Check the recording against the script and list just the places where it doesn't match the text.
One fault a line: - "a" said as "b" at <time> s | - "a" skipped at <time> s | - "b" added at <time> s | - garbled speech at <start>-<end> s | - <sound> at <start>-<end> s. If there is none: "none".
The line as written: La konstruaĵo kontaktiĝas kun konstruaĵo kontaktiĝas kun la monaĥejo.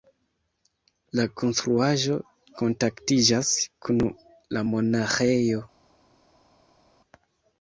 - "konstruaĵo kontaktiĝas kun" skipped at 4.0 s